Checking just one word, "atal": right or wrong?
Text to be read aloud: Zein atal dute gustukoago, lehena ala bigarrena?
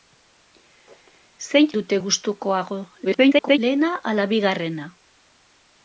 wrong